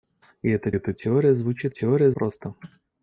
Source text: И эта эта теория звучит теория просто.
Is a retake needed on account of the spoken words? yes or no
no